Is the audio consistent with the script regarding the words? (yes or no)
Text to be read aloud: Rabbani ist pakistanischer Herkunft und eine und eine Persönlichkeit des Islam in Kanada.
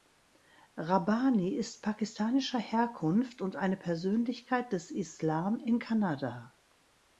no